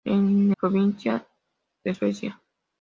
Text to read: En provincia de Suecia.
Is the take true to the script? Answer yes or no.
yes